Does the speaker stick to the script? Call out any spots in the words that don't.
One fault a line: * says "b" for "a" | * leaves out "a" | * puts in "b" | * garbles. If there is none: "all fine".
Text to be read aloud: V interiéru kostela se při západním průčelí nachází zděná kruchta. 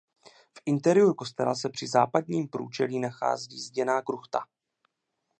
all fine